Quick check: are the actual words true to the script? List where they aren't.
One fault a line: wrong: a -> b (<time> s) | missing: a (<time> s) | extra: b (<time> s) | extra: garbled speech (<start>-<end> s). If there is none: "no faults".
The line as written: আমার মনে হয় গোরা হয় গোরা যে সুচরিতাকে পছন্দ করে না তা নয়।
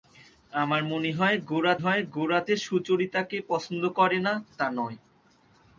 no faults